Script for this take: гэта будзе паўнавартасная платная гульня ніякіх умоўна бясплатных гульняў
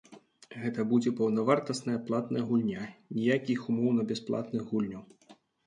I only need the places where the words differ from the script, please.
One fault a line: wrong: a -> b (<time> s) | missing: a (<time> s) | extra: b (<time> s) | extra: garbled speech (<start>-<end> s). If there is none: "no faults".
no faults